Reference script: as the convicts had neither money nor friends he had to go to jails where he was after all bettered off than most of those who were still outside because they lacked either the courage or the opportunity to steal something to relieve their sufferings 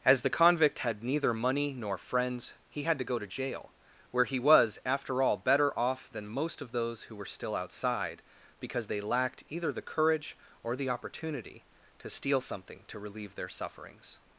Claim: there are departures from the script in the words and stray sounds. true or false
true